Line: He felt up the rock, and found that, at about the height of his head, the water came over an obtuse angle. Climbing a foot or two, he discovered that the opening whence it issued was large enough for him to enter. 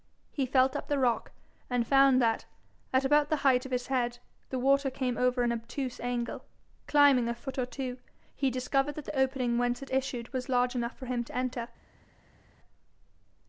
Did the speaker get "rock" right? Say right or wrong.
right